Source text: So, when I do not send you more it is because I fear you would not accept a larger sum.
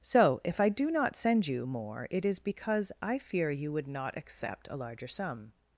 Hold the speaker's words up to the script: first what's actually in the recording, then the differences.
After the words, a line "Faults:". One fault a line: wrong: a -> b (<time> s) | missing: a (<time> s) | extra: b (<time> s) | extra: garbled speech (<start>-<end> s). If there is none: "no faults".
So, if I do not send you more it is because I fear you would not accept a larger sum.
Faults:
wrong: when -> if (0.4 s)